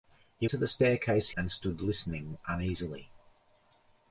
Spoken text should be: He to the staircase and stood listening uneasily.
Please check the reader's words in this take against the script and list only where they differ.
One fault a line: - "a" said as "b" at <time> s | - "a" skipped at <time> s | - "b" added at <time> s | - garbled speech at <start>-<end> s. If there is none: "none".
none